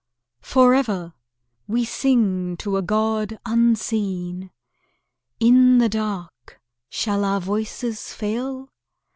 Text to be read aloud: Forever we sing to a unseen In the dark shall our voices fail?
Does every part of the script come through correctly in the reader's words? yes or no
no